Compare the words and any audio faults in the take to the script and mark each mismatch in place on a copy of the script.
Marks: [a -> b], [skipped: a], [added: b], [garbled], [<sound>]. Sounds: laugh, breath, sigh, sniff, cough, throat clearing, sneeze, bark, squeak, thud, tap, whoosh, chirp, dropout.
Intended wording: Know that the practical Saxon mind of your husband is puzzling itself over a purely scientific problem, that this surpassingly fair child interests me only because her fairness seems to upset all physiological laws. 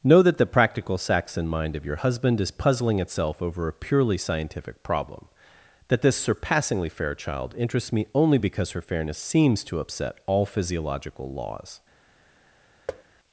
Know that the practical Saxon mind of your husband is puzzling itself over a purely scientific problem, that this surpassingly fair child interests me only because her fairness seems to upset all physiological laws. [thud]